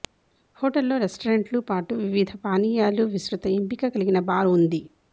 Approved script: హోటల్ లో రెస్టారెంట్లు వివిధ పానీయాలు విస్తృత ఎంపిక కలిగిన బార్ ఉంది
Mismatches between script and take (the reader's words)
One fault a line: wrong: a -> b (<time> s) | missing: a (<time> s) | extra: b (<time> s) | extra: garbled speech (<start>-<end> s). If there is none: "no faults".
extra: పాటు (1.7 s)